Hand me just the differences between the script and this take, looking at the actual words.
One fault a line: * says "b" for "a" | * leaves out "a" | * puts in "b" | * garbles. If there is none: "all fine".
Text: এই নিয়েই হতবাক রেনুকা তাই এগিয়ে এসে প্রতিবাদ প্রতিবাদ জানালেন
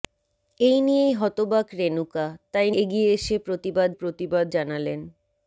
all fine